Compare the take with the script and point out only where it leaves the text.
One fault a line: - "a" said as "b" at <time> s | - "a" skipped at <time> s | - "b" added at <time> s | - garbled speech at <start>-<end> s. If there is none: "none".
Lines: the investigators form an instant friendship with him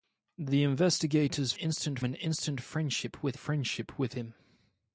- "form" said as "instant" at 1.5 s
- "friendship with" added at 3.3 s